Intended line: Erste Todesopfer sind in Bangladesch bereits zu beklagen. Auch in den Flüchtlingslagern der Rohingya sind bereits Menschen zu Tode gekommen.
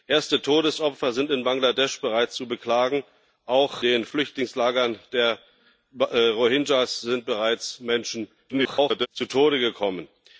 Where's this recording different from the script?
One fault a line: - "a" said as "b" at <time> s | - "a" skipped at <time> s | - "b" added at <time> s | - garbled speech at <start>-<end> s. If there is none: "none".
- "in" skipped at 3.8 s
- garbled speech at 8.5-9.1 s